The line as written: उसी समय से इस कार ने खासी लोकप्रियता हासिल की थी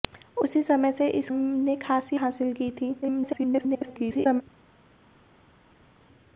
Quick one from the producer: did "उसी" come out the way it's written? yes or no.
yes